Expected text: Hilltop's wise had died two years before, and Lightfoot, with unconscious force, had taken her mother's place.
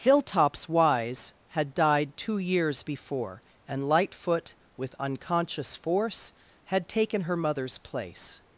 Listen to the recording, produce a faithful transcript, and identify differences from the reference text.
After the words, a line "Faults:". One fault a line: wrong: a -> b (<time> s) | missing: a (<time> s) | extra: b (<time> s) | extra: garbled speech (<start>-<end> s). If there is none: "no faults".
Hilltop's wise had died two years before, and Lightfoot, with unconscious force, had taken her mother's place.
Faults:
no faults